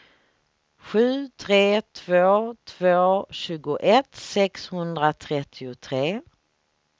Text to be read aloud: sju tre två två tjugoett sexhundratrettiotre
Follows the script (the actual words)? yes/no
yes